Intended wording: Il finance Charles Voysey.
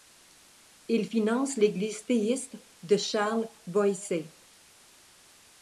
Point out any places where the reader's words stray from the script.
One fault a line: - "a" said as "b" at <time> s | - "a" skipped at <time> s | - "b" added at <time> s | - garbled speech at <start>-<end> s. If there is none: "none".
- "l'Église théiste de" added at 1.6 s